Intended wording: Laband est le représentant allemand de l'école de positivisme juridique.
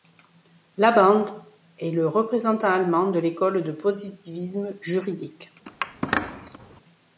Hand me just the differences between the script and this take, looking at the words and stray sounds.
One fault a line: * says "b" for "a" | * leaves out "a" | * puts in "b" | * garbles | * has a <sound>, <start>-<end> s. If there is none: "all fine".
* has a squeak, 5.7-6.8 s